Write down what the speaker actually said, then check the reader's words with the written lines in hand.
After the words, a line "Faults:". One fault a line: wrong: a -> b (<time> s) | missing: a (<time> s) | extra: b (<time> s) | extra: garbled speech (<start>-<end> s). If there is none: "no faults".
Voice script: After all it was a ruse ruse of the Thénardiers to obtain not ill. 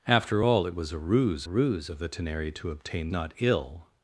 After all it was a ruse ruse of the Thénardiers to obtain not ill.
Faults:
no faults